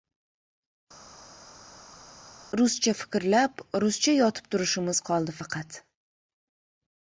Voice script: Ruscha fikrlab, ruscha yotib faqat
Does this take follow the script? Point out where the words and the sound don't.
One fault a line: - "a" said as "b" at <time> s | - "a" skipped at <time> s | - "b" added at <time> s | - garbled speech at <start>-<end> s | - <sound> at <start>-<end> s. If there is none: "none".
- "turishimiz qoldi" added at 4.6 s